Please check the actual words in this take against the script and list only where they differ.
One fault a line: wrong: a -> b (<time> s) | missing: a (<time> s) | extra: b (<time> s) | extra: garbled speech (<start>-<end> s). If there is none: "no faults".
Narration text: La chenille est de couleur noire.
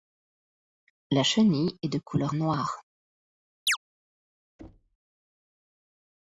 no faults